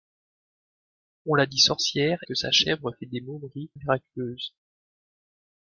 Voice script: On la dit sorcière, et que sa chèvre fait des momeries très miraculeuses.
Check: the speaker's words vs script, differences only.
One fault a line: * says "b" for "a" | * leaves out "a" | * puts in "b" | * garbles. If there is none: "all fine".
* leaves out "et"
* leaves out "très"